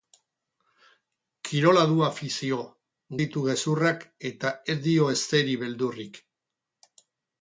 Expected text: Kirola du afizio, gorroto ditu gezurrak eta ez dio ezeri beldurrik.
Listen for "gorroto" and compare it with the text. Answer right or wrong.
wrong